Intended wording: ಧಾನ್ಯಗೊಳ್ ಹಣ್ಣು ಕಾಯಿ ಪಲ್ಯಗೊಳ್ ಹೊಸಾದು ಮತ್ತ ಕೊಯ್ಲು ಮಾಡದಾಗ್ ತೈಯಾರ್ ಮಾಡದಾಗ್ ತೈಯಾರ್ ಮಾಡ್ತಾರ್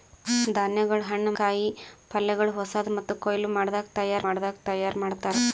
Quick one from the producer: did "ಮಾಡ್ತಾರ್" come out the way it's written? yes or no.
yes